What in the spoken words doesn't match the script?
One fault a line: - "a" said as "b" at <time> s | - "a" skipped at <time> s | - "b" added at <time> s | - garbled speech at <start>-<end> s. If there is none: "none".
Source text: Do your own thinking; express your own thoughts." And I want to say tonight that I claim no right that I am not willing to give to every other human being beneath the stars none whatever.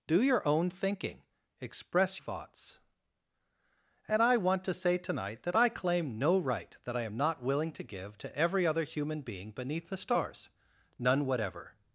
- "your own" skipped at 2.2 s